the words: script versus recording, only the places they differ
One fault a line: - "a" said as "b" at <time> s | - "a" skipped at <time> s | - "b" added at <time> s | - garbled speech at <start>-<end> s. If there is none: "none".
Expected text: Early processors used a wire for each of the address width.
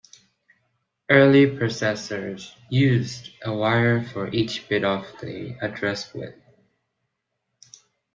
- "bit" added at 4.7 s